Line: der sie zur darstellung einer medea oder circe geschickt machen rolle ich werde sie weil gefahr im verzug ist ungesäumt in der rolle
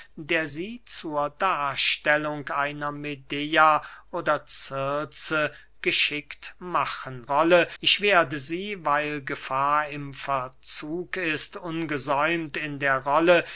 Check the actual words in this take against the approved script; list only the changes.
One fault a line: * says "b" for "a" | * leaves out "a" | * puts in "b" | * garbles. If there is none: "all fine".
all fine